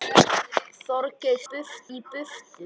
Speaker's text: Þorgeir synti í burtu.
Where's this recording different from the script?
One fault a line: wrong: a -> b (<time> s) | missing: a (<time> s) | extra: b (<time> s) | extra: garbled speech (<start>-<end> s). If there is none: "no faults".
wrong: synti -> burtu (1.5 s)